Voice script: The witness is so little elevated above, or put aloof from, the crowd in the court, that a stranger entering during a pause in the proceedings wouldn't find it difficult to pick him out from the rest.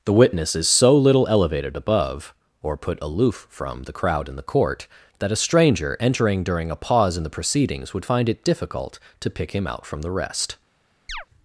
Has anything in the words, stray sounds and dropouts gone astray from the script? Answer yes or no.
yes